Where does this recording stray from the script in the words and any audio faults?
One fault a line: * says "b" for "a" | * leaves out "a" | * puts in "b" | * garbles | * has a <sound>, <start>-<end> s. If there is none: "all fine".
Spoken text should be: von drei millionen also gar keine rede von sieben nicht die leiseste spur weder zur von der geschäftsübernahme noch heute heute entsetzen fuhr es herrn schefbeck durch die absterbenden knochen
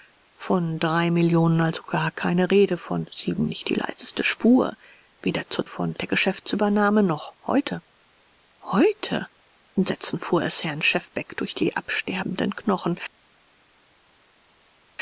all fine